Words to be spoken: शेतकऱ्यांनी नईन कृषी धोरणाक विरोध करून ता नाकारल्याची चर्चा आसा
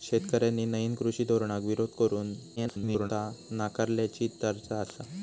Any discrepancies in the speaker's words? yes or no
yes